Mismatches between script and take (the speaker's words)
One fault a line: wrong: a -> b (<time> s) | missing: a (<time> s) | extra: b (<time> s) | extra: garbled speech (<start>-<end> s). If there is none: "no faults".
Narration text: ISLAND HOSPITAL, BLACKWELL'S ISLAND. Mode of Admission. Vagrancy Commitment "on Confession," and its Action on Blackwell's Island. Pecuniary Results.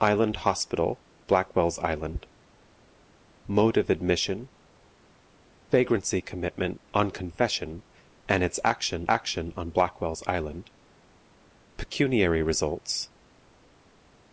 extra: Action (9.1 s)